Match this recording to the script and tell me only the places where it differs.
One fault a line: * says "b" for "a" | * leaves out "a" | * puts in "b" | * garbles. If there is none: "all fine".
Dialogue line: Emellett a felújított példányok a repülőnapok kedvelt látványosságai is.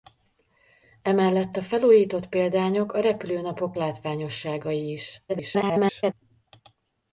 * leaves out "kedvelt"
* garbles